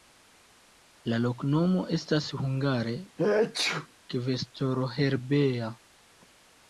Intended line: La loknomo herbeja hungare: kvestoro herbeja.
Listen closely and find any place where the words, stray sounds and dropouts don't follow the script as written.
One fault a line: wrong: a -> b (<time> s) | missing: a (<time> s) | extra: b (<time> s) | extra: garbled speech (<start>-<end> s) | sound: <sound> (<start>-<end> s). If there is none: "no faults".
wrong: herbeja -> estas (2.0 s)
sound: sneeze (3.2-3.9 s)